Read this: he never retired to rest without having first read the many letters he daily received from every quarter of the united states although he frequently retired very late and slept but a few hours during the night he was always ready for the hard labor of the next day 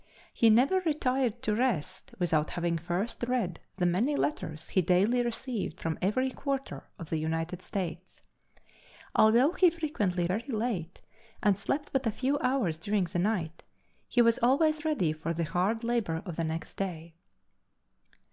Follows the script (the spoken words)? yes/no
no